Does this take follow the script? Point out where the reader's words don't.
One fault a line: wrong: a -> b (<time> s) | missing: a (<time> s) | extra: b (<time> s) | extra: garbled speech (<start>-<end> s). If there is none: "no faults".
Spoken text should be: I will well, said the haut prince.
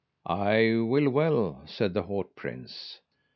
no faults